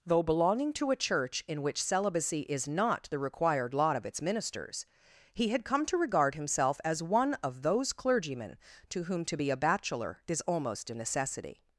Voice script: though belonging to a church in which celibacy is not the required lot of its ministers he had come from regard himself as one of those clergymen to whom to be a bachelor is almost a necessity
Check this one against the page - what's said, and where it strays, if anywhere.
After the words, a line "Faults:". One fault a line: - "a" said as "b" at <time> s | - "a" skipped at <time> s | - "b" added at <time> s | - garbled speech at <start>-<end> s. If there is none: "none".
though belonging to a church in which celibacy is not the required lot of its ministers he had come to regard himself as one of those clergymen to whom to be a bachelor is almost a necessity
Faults:
- "from" said as "to" at 5.8 s